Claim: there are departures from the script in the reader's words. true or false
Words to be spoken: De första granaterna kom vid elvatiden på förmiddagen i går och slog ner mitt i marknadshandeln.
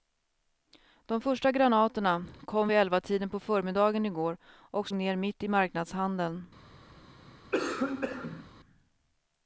true